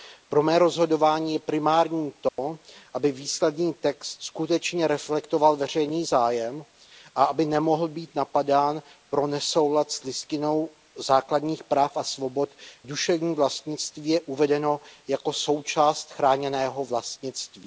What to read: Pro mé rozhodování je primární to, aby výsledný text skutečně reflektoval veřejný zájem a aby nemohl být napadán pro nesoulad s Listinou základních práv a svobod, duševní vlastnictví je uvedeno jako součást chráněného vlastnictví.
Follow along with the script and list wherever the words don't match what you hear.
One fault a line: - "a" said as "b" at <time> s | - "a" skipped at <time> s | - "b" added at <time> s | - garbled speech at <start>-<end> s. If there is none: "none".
none